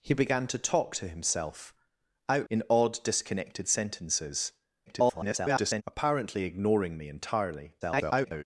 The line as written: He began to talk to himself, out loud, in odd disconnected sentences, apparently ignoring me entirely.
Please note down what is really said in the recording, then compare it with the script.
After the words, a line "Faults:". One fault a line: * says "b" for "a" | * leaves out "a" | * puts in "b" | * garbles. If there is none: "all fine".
He began to talk to himself, out in odd disconnected sentences, [garbled] apparently ignoring me entirely. [garbled]
Faults:
* leaves out "loud"
* garbles
* garbles